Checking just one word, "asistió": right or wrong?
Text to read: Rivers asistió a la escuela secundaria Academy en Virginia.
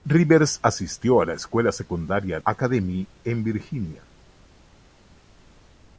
right